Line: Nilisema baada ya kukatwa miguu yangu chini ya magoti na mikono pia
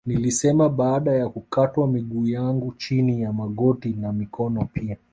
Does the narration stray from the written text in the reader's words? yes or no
no